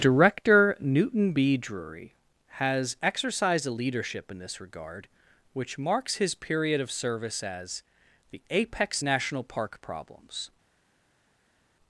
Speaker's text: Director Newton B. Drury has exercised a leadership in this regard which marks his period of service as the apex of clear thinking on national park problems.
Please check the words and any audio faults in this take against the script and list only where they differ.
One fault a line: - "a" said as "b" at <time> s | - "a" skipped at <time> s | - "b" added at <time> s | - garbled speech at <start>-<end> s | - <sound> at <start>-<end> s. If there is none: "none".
- "of clear thinking on" skipped at 9.0 s